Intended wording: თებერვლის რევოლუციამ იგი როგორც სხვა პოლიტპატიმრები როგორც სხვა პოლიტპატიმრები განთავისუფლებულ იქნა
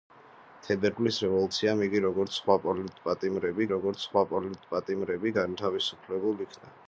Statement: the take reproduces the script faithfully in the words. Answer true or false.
true